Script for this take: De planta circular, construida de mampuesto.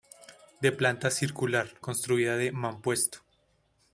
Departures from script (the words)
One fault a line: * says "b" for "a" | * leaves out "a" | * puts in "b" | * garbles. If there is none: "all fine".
all fine